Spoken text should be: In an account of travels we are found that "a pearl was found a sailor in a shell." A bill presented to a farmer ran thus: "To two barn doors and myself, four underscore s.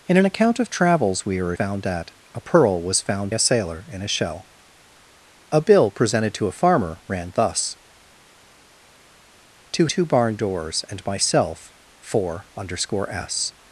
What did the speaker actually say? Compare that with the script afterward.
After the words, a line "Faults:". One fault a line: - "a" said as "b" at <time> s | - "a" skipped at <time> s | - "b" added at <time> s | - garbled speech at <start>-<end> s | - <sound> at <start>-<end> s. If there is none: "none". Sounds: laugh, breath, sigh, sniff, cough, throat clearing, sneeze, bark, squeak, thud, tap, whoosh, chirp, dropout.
In an account of travels we are found that "a pearl was found a sailor in a shell." A bill presented to a farmer ran thus: "To two barn doors and myself, four underscore s.
Faults:
none